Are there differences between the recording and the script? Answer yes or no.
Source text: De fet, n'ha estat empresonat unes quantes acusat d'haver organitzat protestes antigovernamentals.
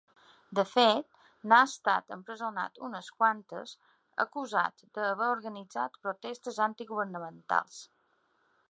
no